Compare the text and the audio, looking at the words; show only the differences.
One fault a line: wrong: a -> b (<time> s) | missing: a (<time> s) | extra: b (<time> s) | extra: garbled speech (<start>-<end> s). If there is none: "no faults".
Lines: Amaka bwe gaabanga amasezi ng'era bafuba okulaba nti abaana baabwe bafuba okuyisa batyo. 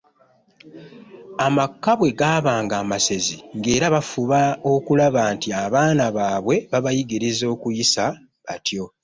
wrong: bafuba -> babayigiriza (6.7 s)